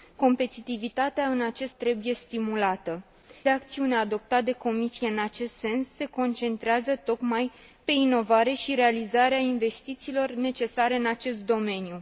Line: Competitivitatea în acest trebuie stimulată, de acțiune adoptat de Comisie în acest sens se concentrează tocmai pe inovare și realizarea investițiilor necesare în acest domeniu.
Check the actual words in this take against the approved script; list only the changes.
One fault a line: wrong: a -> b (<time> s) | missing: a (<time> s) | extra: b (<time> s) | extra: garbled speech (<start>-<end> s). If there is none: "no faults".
no faults